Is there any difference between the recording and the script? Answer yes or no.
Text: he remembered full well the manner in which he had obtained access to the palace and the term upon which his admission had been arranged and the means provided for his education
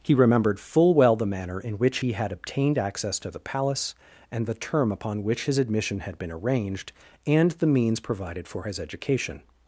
no